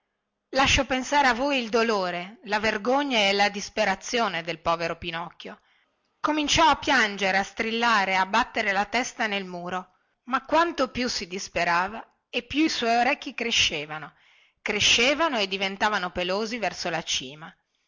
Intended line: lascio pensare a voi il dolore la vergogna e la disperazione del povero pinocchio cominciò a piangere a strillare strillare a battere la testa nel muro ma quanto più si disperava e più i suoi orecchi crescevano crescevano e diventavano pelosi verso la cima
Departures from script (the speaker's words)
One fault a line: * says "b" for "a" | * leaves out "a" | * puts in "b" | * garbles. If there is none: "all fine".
* leaves out "strillare"